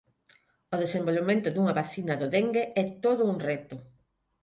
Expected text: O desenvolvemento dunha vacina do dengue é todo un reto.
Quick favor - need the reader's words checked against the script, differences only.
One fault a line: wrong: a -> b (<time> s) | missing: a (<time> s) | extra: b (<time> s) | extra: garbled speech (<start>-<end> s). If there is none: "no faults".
no faults